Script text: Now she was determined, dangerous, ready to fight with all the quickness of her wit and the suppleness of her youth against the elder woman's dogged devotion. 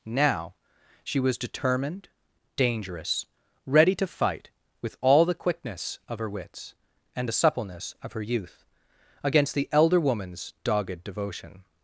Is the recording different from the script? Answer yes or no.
yes